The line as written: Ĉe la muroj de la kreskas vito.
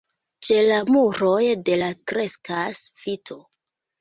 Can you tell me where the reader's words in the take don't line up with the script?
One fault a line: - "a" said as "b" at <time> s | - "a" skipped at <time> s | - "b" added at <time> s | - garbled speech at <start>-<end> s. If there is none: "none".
none